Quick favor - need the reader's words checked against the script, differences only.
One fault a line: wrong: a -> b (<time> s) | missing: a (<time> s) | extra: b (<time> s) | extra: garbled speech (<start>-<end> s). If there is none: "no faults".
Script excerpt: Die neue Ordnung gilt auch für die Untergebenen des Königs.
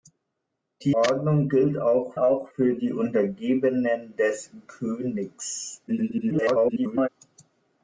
missing: neue (0.9 s)
extra: auch (2.1 s)
extra: garbled speech (5.9-7.1 s)